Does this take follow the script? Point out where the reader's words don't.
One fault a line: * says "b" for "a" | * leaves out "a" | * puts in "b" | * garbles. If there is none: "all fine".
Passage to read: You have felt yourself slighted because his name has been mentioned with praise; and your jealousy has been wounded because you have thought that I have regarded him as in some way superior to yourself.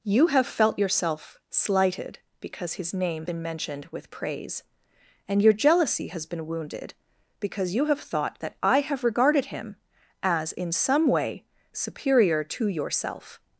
* leaves out "has"